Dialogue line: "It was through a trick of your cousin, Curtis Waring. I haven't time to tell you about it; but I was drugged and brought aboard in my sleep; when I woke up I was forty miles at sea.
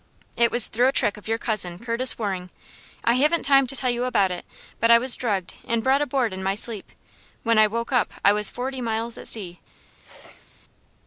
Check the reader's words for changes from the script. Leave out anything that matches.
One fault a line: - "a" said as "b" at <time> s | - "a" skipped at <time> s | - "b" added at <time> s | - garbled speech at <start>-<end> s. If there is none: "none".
none